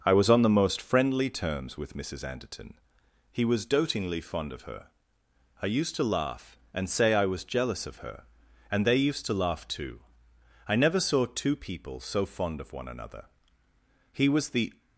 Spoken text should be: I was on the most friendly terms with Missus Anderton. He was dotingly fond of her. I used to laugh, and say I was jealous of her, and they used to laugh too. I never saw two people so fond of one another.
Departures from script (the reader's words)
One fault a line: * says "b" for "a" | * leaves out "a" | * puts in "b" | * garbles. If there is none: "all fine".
* puts in "He was the"